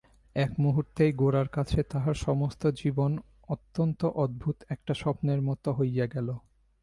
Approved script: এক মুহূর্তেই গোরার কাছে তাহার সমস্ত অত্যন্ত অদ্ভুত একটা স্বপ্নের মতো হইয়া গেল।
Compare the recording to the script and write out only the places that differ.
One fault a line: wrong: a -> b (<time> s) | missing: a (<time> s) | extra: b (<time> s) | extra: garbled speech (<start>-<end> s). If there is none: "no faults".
extra: জীবন (2.7 s)